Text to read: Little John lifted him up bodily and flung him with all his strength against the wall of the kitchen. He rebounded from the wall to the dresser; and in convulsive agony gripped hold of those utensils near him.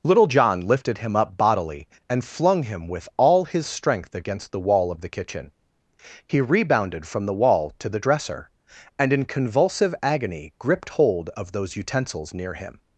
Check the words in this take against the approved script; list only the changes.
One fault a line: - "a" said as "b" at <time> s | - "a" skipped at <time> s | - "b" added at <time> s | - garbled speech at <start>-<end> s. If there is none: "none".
none